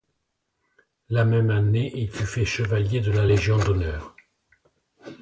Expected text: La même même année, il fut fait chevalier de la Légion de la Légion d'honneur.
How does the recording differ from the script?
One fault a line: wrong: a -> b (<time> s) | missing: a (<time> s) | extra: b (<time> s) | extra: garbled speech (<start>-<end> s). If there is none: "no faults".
missing: même (1.5 s)
missing: de la Légion (3.6 s)